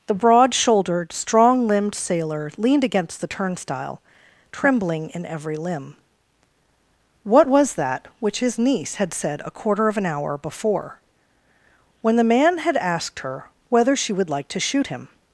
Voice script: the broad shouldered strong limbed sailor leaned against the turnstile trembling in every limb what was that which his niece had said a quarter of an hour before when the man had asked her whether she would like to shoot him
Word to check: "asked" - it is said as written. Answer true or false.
true